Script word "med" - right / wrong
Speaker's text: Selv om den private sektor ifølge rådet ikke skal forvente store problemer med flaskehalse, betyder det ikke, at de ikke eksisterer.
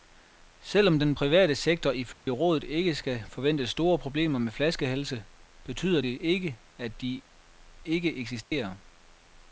right